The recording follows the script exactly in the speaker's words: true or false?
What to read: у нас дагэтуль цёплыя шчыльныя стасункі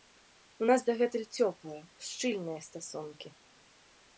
true